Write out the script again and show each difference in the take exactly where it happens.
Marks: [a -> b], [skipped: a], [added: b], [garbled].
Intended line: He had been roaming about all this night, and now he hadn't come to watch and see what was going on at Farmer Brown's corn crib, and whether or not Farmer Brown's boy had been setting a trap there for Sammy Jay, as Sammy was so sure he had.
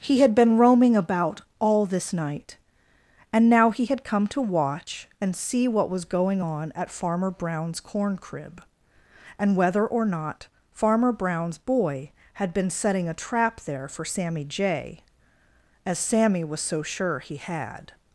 He had been roaming about all this night, and now he [hadn't -> had] come to watch and see what was going on at Farmer Brown's corn crib, and whether or not Farmer Brown's boy had been setting a trap there for Sammy Jay, as Sammy was so sure he had.